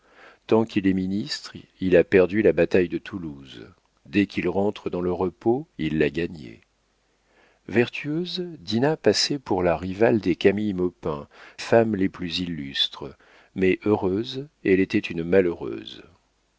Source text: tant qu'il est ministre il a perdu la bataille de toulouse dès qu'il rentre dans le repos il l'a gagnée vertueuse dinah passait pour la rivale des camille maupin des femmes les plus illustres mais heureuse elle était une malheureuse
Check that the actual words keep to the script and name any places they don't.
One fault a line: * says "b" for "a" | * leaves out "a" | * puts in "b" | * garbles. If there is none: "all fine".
* leaves out "des"